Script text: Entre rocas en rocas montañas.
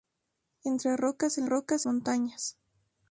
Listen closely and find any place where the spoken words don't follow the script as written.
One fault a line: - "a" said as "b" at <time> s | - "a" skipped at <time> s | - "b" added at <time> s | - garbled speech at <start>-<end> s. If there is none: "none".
none